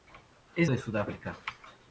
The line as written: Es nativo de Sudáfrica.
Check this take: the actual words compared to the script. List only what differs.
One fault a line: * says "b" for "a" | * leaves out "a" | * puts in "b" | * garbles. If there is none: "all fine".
* leaves out "nativo"